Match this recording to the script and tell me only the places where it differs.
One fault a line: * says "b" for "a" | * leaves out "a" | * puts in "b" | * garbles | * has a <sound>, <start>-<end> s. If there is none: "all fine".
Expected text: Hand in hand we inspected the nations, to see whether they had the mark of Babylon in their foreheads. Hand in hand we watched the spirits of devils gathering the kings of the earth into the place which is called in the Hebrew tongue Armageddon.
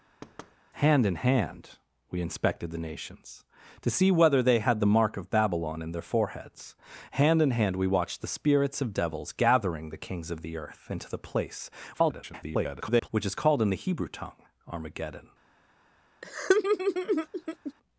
* has a thud, 0.2-0.6 s
* garbles
* has a laugh, 16.2-17.7 s